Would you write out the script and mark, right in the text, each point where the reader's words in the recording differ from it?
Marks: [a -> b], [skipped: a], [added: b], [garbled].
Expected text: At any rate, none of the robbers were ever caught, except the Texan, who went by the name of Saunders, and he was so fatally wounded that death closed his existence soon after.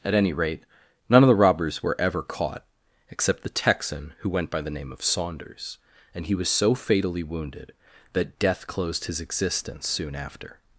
At any rate, none of the robbers were ever caught, except the Texan, who went by the name of Saunders, and he was so fatally wounded that death closed his existence soon after.